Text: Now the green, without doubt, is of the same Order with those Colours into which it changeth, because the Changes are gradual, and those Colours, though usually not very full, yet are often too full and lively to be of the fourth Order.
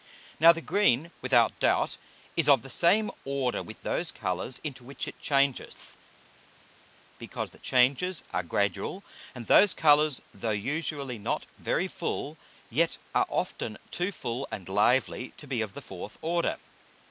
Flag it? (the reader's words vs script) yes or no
no